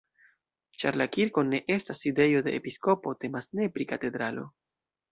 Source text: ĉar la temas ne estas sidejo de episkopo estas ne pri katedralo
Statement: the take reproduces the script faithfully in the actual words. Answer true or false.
false